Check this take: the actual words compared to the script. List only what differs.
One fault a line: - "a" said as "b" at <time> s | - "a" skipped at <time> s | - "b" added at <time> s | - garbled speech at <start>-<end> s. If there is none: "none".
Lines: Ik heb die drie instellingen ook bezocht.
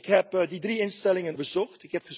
- "ook" skipped at 1.4 s